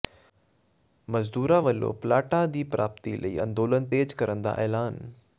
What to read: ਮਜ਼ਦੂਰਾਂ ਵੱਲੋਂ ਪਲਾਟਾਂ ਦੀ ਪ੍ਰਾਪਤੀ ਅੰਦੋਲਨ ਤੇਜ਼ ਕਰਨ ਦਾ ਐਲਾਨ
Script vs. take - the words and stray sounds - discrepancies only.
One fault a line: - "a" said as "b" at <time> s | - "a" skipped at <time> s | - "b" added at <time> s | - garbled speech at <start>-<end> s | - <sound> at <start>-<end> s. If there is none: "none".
- "ਲਈ" added at 3.2 s